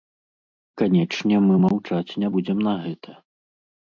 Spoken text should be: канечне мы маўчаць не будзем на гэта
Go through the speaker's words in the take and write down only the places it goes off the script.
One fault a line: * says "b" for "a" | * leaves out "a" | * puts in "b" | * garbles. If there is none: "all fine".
all fine